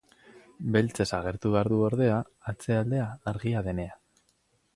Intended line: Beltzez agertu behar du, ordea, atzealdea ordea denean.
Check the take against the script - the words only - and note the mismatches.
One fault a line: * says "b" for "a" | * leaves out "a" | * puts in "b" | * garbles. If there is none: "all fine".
* says "argia" for "ordea"